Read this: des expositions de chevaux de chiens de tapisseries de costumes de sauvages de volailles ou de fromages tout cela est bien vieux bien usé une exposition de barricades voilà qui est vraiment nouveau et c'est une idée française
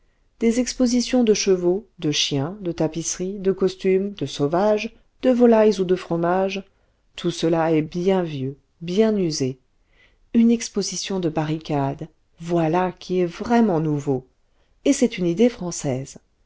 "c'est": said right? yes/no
yes